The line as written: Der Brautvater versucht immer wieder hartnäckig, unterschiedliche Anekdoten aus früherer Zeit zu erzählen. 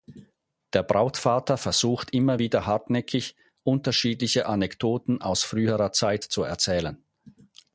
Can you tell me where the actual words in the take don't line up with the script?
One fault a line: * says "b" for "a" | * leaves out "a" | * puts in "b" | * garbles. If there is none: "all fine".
all fine